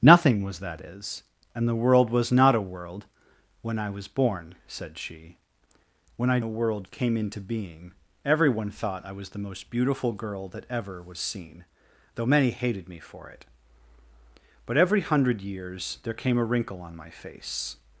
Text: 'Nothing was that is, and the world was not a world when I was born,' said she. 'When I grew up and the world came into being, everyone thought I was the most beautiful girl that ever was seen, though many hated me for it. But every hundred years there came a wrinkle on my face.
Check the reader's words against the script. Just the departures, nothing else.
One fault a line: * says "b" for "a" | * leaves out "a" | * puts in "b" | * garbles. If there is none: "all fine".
* leaves out "grew up and"